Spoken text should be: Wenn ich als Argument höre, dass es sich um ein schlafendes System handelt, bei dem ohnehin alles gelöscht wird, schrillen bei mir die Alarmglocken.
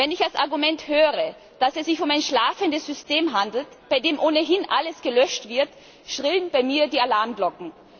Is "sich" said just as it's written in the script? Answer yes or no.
yes